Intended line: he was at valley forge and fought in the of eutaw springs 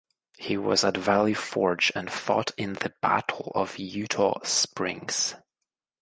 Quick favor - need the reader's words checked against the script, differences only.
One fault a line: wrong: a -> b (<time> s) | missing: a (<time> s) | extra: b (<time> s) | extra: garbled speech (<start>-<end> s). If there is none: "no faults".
extra: battle (3.0 s)